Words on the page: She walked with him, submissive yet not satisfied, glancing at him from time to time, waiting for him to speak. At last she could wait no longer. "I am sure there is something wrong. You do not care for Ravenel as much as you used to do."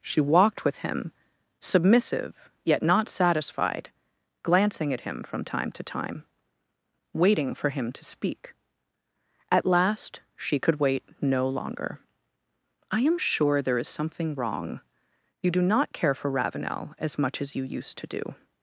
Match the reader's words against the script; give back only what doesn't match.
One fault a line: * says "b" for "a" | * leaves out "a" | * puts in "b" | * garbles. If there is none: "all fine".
all fine